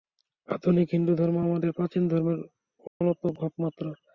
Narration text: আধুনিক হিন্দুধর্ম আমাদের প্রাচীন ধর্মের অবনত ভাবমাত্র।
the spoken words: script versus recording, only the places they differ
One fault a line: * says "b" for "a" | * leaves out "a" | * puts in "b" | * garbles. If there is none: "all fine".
all fine